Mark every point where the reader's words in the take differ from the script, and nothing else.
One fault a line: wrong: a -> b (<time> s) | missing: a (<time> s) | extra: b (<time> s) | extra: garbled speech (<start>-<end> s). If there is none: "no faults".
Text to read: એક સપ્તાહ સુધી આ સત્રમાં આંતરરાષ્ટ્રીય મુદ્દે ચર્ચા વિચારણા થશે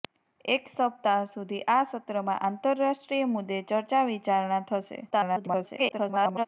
extra: garbled speech (5.1-6.5 s)